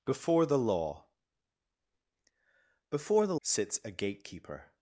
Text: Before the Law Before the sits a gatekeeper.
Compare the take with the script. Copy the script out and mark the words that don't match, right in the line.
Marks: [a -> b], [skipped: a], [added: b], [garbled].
Before the Law Before the sits a gatekeeper.